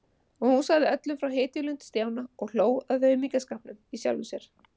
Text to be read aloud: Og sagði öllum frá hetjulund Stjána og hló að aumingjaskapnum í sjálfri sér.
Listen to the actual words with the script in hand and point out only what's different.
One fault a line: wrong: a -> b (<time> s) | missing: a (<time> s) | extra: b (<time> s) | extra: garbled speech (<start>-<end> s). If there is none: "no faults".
extra: hún (0.5 s)